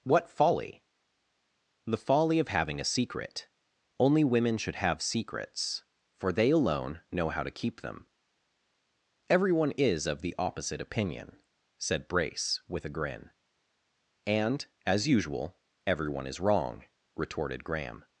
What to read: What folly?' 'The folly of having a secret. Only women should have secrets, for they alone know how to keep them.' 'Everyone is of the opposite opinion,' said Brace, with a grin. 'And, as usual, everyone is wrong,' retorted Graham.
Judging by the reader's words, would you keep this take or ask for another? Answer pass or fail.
pass